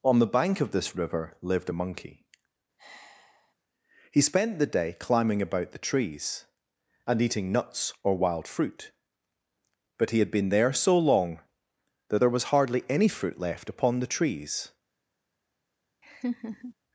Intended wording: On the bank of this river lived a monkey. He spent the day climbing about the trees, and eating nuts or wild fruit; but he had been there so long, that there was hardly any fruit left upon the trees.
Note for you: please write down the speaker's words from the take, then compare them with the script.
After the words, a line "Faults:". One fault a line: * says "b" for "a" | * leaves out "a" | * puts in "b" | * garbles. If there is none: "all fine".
On the bank of this river lived a monkey. He spent the day climbing about the trees, and eating nuts or wild fruit; but he had been there so long, that there was hardly any fruit left upon the trees.
Faults:
all fine